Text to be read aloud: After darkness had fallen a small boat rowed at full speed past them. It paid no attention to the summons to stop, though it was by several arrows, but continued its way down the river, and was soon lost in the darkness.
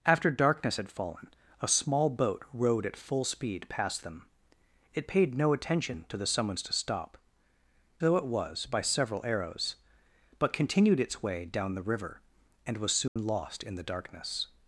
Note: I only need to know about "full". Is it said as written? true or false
true